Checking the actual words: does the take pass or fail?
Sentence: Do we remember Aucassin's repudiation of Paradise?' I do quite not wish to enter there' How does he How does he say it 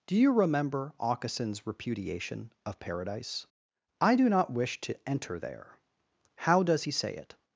fail